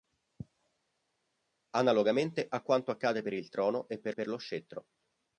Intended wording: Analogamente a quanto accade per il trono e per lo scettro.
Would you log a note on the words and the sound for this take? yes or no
yes